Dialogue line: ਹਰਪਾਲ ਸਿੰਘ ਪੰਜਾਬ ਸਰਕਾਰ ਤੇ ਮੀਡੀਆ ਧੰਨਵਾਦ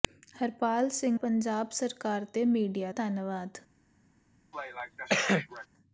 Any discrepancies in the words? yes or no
no